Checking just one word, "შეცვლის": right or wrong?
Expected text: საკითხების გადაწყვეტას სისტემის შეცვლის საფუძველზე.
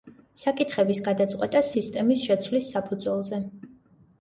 right